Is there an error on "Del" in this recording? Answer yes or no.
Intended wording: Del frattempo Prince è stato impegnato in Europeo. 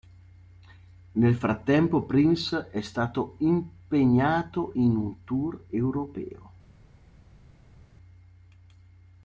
yes